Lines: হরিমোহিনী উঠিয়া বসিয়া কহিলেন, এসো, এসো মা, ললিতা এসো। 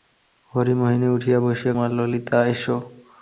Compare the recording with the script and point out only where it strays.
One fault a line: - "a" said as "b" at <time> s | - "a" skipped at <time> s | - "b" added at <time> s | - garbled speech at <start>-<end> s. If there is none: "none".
- "কহিলেন এসো এসো" skipped at 1.7 s